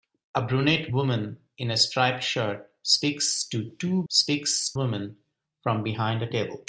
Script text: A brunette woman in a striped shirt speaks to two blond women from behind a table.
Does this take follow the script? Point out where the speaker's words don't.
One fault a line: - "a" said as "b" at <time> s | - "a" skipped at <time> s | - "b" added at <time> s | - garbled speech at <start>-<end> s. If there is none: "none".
- "blond" said as "speaks" at 4.1 s